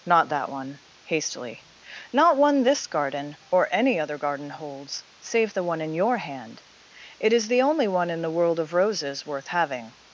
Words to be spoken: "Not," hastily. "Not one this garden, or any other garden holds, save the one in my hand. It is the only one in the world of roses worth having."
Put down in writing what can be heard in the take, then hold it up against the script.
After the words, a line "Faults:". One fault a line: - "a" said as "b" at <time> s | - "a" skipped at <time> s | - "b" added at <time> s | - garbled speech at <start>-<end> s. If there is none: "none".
"Not that one," hastily. "Not one this garden, or any other garden holds, save the one in your hand. It is the only one in the world of roses worth having."
Faults:
- "that one" added at 0.3 s
- "my" said as "your" at 5.9 s